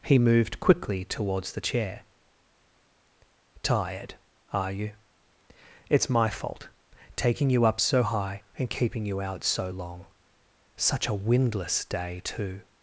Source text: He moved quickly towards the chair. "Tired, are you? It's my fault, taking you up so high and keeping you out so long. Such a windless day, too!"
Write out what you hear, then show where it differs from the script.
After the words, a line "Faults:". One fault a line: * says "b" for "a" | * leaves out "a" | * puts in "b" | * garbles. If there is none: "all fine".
He moved quickly towards the chair. "Tired, are you? It's my fault, taking you up so high and keeping you out so long. Such a windless day, too!"
Faults:
all fine